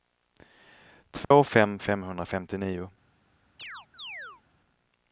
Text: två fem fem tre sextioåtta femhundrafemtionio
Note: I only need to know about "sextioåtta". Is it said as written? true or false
false